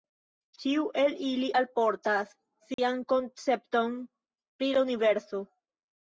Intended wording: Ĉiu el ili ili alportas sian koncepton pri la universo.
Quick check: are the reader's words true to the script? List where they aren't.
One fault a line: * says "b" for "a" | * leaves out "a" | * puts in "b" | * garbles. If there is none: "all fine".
* leaves out "ili"